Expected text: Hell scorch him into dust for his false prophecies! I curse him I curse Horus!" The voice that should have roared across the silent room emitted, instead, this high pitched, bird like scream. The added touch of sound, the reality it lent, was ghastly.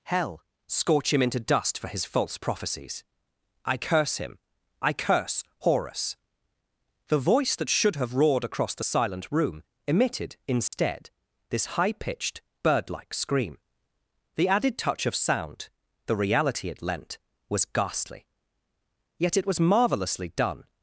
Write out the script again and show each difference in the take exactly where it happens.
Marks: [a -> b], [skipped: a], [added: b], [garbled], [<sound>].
Hell scorch him into dust for his false prophecies! I curse him I curse Horus!" The voice that should have roared across the silent room emitted, instead, [dropout] this high pitched, bird like scream. The added touch of sound, the reality it lent, was ghastly. [added: Yet it was marvellously done]